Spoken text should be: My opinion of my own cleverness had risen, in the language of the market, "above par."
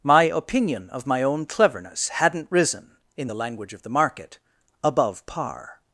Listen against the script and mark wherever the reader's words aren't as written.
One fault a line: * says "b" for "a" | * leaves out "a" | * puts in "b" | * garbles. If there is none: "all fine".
* says "hadn't" for "had"